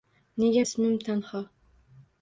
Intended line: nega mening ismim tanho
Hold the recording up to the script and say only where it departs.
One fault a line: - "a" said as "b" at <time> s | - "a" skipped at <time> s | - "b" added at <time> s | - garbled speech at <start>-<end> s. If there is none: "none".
- "mening" skipped at 0.6 s